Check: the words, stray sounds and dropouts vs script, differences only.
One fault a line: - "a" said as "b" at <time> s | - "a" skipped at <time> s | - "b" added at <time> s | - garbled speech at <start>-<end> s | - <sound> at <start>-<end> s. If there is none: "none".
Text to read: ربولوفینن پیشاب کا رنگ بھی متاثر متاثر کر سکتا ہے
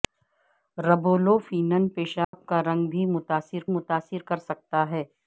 - dropout at 2.2-2.3 s